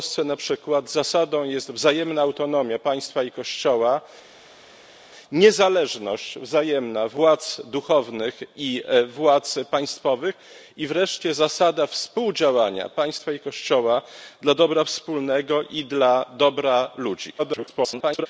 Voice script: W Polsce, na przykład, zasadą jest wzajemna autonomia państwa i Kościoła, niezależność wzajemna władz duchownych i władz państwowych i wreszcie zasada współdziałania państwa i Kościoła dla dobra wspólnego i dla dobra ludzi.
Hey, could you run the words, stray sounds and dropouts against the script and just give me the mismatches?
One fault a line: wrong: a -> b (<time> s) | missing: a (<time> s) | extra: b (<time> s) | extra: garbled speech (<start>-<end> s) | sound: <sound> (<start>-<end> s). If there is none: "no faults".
extra: garbled speech (17.4-18.3 s)